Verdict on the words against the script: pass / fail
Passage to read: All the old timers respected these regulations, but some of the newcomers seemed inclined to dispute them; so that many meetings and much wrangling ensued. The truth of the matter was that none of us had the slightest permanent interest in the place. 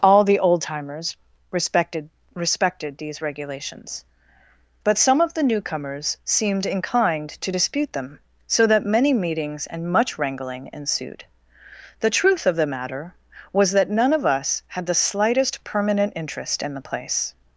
fail